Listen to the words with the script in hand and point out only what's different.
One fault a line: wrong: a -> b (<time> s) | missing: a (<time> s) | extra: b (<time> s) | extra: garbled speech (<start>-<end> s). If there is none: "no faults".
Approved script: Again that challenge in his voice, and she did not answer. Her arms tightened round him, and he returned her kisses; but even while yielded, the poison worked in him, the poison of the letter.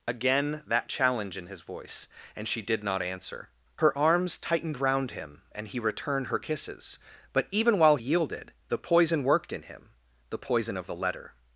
no faults